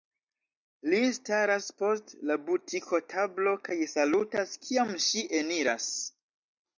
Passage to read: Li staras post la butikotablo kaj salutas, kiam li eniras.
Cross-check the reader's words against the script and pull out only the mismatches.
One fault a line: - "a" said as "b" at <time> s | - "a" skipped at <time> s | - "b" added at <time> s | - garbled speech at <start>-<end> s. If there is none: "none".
- "li" said as "ŝi" at 5.1 s